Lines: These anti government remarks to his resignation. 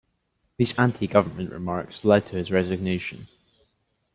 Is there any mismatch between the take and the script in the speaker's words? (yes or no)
yes